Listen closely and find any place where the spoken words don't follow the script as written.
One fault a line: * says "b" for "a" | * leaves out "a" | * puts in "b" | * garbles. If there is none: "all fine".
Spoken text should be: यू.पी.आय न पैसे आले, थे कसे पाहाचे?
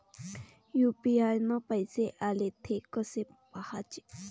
all fine